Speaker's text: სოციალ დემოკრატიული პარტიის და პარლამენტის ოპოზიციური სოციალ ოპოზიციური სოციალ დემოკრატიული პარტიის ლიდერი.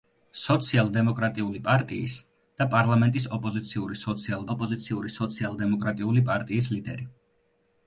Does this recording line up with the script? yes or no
yes